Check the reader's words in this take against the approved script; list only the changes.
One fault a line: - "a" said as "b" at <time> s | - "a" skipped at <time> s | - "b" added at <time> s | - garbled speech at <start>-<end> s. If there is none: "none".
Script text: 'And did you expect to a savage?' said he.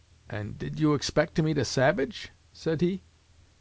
- "meet" added at 1.4 s